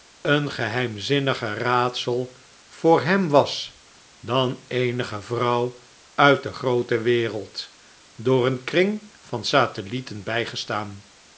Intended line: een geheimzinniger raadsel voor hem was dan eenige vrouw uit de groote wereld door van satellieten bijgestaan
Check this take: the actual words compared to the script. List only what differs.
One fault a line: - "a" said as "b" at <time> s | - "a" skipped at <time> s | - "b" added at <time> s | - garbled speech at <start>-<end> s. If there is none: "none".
- "een kring" added at 8.4 s